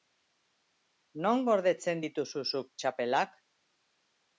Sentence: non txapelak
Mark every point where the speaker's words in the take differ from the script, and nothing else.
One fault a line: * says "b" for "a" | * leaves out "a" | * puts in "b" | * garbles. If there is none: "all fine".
* puts in "gordetzen dituzu zuk"